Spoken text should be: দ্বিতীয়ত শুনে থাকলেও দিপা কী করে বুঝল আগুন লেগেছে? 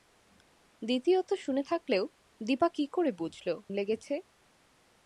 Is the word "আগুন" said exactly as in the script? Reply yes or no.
no